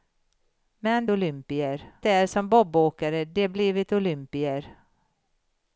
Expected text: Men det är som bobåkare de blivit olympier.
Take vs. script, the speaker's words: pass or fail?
fail